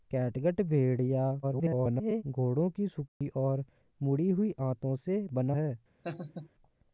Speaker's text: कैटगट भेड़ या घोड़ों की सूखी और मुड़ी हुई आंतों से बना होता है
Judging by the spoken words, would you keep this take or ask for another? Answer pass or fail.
fail